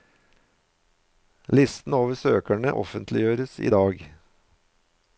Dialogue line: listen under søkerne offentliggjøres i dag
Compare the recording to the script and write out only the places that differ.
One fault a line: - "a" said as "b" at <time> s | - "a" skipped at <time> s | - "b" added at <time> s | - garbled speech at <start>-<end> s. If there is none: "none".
- "under" said as "over" at 1.9 s